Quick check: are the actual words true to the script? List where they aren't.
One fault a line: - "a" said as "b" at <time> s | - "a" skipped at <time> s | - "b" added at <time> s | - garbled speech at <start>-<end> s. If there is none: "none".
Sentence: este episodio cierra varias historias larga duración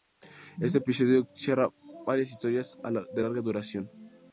- "de" added at 3.1 s